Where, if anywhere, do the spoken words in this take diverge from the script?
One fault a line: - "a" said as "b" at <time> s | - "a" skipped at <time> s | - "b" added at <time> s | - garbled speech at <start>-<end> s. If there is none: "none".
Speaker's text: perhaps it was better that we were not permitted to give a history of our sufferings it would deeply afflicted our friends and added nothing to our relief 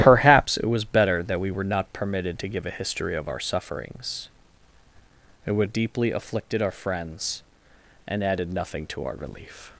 none